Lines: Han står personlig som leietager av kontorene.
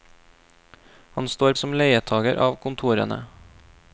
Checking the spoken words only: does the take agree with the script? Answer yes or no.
no